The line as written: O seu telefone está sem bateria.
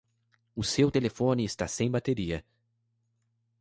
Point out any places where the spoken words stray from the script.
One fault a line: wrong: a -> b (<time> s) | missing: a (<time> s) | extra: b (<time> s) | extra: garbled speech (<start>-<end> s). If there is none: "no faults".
no faults